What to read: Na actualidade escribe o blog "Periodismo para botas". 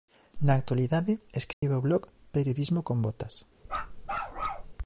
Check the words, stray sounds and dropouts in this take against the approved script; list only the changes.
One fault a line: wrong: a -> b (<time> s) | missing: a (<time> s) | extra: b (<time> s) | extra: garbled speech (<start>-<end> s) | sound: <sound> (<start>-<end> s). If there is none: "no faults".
sound: dropout (1.5-1.6 s)
wrong: para -> con (2.8 s)
sound: bark (3.7-4.7 s)